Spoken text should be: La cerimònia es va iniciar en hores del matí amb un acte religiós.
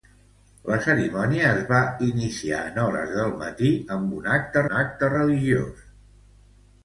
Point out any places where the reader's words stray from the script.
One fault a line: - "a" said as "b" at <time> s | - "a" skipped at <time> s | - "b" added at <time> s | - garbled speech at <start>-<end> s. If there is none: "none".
- "un acte" added at 4.7 s